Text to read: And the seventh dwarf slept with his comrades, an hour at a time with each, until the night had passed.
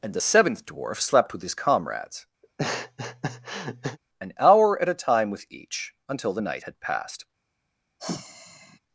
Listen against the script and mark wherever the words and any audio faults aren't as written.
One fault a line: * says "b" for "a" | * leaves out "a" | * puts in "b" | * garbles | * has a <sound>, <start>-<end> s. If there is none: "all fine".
* has a laugh, 2.4-4.0 s
* has a sigh, 8.0-8.8 s